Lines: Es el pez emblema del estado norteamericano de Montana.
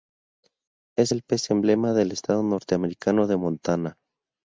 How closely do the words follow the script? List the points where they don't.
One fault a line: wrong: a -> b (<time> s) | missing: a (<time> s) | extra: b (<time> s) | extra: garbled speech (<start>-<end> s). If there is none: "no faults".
no faults